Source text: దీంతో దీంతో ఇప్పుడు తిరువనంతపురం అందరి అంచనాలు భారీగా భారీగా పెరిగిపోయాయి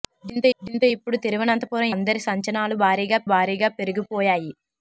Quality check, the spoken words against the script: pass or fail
pass